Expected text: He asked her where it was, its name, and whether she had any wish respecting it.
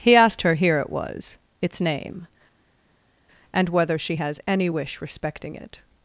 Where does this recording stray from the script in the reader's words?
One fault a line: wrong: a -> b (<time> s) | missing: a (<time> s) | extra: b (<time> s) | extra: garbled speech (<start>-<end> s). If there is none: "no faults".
wrong: where -> here (0.6 s)
wrong: had -> has (4.1 s)